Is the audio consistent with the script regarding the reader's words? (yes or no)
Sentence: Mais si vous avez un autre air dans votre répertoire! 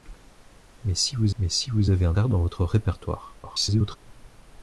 no